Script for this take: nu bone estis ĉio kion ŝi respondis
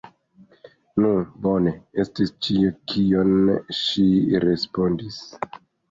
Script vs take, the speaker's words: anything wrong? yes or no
no